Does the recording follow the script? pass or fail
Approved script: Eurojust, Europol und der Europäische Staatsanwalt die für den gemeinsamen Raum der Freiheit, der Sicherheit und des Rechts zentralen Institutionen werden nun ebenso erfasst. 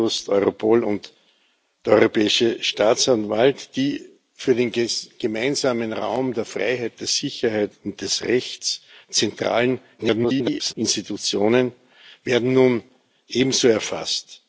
fail